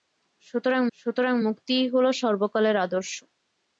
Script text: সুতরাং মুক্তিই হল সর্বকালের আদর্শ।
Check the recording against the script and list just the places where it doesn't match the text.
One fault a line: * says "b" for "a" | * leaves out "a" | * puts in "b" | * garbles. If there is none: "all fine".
* puts in "সুতরাং"